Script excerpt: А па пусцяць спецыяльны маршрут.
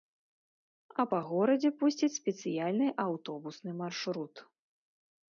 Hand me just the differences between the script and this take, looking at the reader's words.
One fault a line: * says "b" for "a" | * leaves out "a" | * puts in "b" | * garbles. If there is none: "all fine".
* puts in "горадзе"
* puts in "аўтобусны"